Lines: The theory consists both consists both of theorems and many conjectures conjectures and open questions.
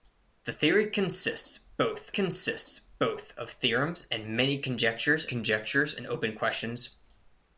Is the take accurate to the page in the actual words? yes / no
yes